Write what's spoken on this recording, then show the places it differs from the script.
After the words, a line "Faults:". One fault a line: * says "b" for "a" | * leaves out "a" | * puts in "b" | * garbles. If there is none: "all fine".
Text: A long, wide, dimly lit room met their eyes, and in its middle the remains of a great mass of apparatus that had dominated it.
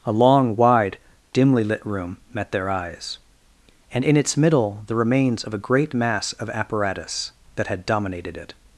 A long, wide, dimly lit room met their eyes, and in its middle the remains of a great mass of apparatus that had dominated it.
Faults:
all fine